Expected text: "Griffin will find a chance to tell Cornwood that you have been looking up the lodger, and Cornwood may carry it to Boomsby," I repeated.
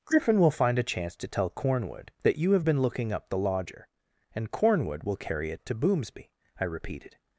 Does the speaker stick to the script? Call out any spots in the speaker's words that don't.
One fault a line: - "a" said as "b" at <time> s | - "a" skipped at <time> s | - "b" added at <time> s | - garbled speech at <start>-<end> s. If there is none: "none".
- "may" said as "will" at 5.0 s